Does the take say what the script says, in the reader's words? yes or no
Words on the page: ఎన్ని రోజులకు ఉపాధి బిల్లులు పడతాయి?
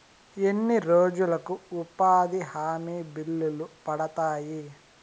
no